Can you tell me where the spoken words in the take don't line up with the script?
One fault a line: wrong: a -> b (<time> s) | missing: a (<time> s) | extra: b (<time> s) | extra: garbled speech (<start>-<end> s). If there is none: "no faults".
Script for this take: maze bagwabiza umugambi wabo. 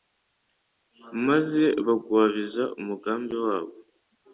no faults